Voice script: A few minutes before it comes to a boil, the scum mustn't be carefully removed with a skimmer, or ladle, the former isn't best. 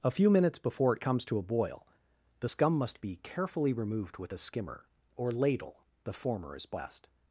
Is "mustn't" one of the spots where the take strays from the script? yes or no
yes